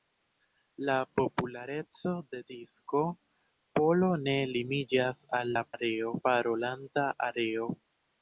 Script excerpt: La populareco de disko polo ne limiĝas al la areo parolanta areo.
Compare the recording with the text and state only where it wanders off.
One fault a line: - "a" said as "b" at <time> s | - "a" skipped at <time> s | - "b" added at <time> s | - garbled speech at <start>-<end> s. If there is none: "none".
none